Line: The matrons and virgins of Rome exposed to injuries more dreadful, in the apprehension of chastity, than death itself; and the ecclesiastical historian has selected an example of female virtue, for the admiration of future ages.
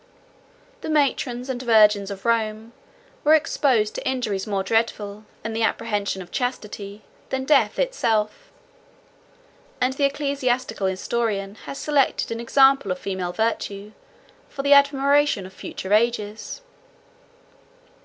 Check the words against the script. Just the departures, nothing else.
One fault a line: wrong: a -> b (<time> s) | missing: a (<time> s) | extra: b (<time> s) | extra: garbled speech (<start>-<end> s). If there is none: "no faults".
extra: were (3.2 s)